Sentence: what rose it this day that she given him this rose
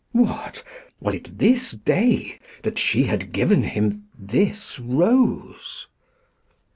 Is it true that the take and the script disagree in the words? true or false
true